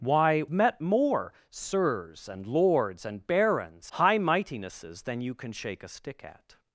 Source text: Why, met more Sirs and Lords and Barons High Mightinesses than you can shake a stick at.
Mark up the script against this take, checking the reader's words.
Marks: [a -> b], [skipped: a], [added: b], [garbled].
Why, met more Sirs and Lords and Barons High Mightinesses than you can shake a stick at.